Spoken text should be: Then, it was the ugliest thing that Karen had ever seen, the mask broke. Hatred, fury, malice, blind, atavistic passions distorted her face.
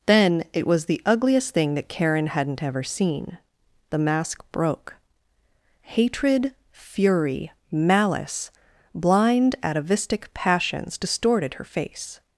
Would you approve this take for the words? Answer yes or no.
no